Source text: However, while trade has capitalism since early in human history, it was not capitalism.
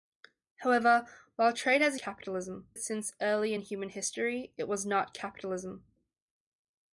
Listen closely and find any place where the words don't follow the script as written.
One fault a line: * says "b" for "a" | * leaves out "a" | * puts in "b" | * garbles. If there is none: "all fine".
all fine